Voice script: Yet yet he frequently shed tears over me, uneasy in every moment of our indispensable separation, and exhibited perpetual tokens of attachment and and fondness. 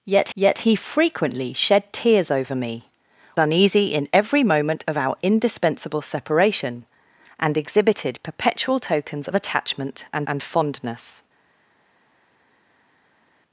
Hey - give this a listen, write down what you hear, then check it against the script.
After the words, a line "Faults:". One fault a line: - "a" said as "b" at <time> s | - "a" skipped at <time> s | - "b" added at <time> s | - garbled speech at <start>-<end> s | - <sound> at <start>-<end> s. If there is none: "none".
Yet yet he frequently shed tears over me, uneasy in every moment of our indispensable separation, and exhibited perpetual tokens of attachment and and fondness.
Faults:
none